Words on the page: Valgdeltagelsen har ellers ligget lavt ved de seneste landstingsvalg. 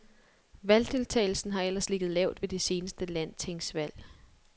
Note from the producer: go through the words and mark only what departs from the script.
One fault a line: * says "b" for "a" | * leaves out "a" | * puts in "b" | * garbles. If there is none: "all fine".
all fine